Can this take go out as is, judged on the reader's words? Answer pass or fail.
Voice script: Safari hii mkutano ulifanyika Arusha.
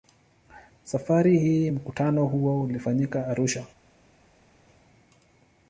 fail